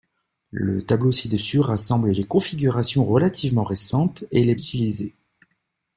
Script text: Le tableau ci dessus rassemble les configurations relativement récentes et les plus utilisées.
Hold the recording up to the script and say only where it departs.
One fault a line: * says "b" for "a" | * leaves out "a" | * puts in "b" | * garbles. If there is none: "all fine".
* leaves out "plus"